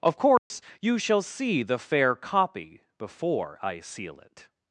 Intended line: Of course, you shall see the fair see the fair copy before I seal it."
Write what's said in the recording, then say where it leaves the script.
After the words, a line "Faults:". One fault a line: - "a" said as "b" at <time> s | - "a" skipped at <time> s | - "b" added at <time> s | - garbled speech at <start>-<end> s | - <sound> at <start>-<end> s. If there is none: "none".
Of course, you shall see the fair copy before I seal it."
Faults:
- dropout at 0.4-0.5 s
- "see the fair" skipped at 2.1 s